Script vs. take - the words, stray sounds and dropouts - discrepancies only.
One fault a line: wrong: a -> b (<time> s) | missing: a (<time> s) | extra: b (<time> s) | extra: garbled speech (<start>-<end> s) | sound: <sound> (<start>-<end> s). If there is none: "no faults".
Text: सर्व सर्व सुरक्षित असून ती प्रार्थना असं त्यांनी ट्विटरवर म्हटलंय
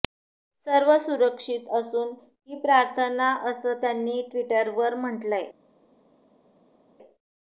missing: सर्व (1.0 s)
wrong: ती -> ही (2.5 s)